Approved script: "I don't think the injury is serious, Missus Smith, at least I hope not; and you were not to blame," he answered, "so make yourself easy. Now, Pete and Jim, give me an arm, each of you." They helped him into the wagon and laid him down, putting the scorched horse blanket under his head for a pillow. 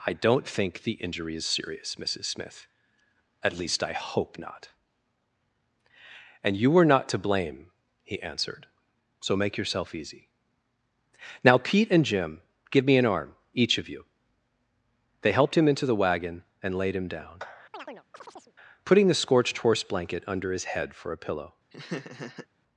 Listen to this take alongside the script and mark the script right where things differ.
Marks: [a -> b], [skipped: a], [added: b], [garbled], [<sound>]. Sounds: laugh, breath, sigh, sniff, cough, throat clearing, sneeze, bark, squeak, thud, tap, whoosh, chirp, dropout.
"I don't think the injury is serious, Missus Smith, at least I hope not; and you were not to blame," he answered, "so make yourself easy. Now, Pete and Jim, give me an arm, each of you." They helped him into the wagon and laid him down, [chirp] putting the scorched horse blanket under his head for a pillow. [laugh]